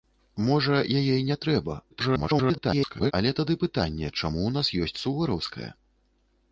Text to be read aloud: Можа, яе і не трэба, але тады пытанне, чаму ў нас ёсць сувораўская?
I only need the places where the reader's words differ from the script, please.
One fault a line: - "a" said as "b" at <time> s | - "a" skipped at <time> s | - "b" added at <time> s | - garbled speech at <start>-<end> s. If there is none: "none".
- garbled speech at 1.9-3.1 s